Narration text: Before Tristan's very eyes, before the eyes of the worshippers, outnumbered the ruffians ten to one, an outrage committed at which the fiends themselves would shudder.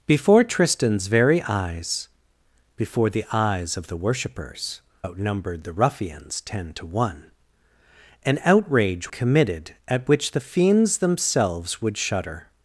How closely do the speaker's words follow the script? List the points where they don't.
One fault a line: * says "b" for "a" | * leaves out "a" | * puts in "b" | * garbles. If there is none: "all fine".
all fine